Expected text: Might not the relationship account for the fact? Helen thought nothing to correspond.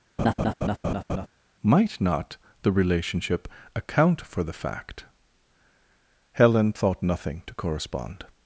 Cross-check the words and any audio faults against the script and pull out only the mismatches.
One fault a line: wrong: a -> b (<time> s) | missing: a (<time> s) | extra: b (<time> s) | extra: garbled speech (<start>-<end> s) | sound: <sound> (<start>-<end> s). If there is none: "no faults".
sound: laugh (0.2-1.3 s)